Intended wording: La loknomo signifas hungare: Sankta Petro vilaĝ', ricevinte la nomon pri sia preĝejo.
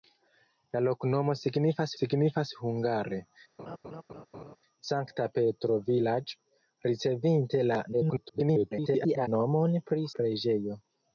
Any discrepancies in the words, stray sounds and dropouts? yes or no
yes